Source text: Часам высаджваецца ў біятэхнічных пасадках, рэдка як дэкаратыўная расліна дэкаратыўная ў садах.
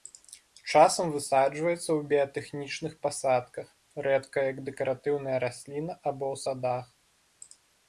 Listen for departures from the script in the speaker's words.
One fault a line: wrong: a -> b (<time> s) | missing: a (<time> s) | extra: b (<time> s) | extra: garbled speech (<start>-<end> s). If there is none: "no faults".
wrong: дэкаратыўная -> або (6.1 s)